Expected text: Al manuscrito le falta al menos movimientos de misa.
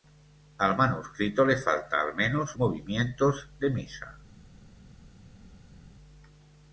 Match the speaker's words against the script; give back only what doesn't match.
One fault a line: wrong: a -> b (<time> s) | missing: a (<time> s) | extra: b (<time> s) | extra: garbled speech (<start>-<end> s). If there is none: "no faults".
no faults